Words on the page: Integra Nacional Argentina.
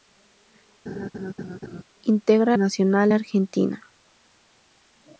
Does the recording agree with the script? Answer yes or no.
yes